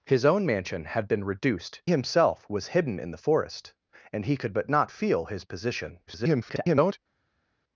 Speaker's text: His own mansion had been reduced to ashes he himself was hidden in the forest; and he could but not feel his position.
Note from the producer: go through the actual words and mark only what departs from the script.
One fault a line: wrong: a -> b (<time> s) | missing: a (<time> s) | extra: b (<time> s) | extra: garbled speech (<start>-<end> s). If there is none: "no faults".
missing: to ashes he (1.8 s)
extra: garbled speech (6.1-7.0 s)